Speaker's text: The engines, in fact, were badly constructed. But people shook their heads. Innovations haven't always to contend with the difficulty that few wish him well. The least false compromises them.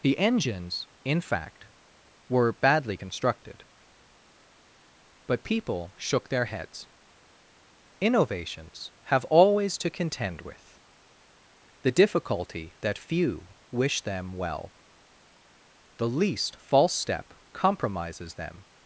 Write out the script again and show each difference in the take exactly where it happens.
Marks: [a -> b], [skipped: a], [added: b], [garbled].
The engines, in fact, were badly constructed. But people shook their heads. Innovations [haven't -> have] always to contend with the difficulty that few wish [him -> them] well. The least false [added: step] compromises them.